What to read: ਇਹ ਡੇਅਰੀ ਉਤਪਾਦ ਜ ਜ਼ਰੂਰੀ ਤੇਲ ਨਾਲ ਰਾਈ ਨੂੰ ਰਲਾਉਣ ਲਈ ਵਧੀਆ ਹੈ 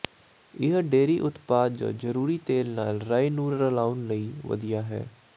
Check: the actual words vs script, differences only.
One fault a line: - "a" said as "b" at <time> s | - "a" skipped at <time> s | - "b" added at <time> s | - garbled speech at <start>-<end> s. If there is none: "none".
none